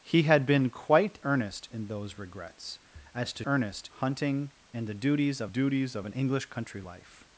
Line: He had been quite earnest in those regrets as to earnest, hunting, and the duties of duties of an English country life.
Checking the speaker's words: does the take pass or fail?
pass